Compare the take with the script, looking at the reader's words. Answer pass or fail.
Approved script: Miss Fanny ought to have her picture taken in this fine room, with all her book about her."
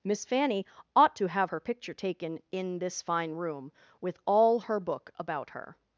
pass